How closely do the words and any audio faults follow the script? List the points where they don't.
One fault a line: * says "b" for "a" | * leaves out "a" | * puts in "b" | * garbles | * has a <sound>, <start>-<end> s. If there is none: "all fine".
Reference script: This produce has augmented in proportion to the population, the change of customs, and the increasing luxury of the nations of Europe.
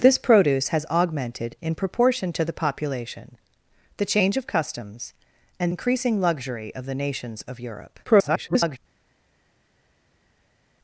* leaves out "the"
* garbles